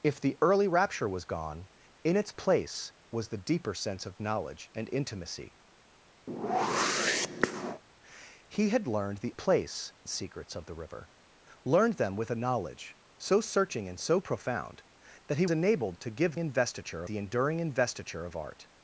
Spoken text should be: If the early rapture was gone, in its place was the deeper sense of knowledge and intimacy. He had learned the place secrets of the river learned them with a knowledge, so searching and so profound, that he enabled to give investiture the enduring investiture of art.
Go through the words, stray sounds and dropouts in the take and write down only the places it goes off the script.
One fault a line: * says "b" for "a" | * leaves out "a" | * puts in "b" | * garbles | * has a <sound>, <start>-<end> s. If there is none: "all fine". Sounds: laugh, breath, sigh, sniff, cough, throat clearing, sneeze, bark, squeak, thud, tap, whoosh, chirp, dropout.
* has a whoosh, 6.3-7.8 s